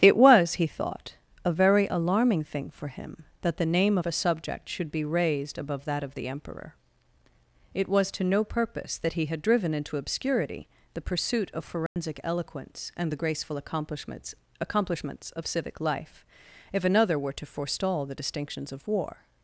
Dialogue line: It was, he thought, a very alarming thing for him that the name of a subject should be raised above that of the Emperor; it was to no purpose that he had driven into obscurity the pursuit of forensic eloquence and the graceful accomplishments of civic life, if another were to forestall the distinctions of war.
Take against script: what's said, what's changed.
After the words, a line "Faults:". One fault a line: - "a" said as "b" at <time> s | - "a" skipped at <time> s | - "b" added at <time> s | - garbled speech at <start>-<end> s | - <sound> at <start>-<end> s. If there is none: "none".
It was, he thought, a very alarming thing for him that the name of a subject should be raised above that of the Emperor; it was to no purpose that he had driven into obscurity the pursuit of forensic eloquence and the graceful accomplishments accomplishments of civic life, if another were to forestall the distinctions of war.
Faults:
- dropout at 11.9-12.0 s
- "accomplishments" added at 14.6 s